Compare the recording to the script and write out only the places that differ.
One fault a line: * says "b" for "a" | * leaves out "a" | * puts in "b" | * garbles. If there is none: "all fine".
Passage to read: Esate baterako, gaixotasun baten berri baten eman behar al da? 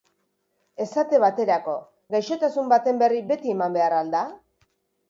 * says "beti" for "baten"